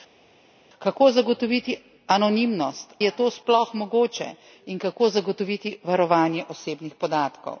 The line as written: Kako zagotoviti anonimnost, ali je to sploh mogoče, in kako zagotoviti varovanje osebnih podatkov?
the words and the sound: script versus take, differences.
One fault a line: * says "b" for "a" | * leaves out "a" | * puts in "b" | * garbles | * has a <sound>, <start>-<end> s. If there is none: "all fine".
* leaves out "ali"